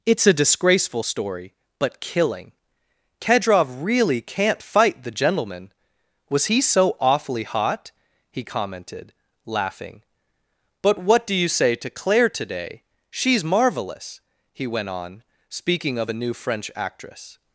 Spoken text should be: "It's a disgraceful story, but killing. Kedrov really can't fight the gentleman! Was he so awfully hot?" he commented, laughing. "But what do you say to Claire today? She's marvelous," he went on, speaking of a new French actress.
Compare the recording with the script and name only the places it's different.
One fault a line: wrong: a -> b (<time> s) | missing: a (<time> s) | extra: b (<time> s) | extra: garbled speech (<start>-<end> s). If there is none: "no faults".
no faults